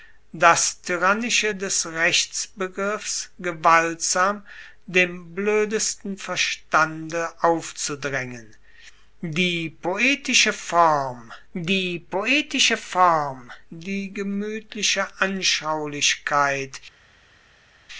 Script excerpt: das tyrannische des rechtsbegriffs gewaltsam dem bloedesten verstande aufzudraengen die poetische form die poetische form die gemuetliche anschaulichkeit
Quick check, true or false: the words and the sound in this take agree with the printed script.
true